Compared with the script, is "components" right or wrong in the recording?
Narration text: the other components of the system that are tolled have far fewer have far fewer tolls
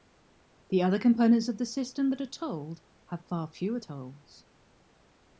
right